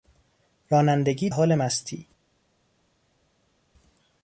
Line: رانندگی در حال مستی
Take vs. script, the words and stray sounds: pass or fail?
fail